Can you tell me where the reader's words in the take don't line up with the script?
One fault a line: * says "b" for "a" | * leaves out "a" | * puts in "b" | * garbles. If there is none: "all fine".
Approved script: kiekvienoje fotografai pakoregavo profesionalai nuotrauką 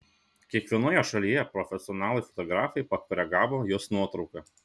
* puts in "šalyje profesionalai"
* says "jos" for "profesionalai"